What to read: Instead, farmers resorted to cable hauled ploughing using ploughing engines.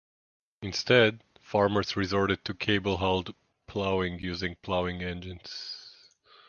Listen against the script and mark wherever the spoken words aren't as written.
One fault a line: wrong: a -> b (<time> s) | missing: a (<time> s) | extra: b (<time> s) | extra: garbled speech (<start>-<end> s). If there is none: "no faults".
no faults